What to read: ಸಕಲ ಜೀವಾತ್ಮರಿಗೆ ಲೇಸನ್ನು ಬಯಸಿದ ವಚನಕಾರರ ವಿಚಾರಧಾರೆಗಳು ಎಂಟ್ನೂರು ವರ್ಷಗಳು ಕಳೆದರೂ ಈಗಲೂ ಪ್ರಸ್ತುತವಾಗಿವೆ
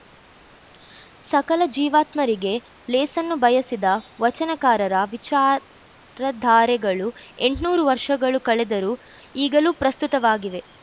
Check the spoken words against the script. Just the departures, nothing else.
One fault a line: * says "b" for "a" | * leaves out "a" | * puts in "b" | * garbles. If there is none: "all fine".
all fine